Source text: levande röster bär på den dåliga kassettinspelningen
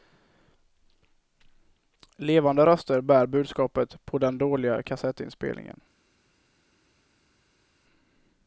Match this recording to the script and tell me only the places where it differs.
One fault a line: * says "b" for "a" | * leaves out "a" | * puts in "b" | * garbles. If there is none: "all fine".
* puts in "budskapet"